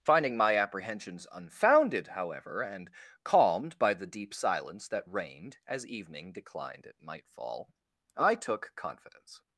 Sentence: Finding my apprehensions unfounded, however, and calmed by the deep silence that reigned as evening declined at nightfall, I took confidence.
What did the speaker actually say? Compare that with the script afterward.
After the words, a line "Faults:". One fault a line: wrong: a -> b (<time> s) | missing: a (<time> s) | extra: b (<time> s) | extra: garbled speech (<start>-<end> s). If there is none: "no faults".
Finding my apprehensions unfounded, however, and calmed by the deep silence that reigned as evening declined at nightfall, I took confidence.
Faults:
no faults